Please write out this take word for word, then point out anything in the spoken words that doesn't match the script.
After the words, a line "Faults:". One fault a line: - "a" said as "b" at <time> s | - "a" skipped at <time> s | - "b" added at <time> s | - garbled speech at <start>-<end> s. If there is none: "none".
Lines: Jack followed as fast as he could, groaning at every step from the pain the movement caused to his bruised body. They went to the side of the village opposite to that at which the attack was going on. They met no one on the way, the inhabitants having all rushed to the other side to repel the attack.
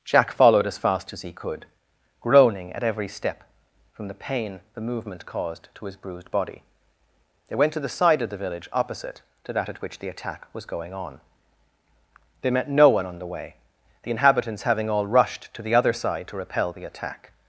Jack followed as fast as he could, groaning at every step from the pain the movement caused to his bruised body. They went to the side of the village opposite to that at which the attack was going on. They met no one on the way, the inhabitants having all rushed to the other side to repel the attack.
Faults:
none